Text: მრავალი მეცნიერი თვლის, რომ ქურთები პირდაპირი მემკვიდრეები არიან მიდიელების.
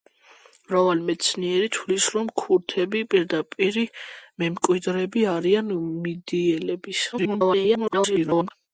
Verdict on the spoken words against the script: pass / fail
fail